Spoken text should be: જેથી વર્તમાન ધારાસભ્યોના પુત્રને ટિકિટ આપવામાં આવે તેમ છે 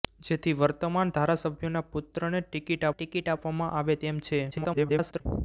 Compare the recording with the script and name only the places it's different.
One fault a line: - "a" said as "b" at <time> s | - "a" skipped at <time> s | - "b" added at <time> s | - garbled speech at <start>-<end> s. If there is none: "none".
- "ટિકિટ" added at 2.9 s
- garbled speech at 4.5-5.2 s